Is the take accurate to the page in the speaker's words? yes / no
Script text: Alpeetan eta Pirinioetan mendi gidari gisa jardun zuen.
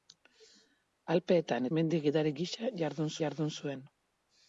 no